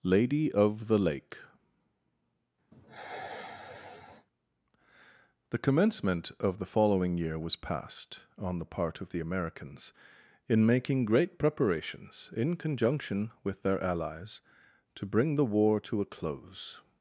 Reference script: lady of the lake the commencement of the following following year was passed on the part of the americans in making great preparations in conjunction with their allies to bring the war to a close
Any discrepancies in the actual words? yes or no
yes